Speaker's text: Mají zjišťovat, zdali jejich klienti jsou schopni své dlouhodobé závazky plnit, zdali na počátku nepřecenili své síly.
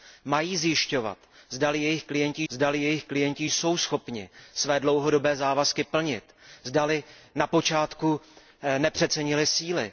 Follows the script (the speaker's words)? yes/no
no